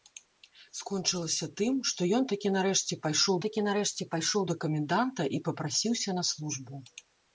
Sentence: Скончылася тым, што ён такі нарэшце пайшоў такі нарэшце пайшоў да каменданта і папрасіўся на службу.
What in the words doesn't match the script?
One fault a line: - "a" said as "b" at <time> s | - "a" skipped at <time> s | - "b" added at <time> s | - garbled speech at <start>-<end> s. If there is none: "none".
none